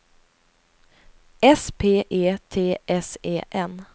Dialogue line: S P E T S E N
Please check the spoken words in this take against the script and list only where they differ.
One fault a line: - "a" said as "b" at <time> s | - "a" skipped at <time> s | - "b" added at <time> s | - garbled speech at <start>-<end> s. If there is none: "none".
none